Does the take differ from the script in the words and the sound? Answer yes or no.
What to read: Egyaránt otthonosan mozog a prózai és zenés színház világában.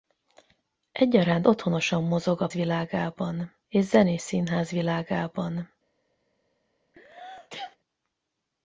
yes